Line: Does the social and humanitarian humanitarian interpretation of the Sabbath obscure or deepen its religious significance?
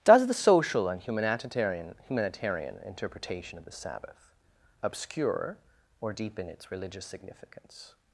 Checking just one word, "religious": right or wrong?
right